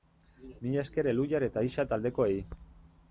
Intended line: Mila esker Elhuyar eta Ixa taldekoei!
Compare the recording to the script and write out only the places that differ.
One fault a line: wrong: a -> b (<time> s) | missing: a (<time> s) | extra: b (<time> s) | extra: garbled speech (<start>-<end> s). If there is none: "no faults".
no faults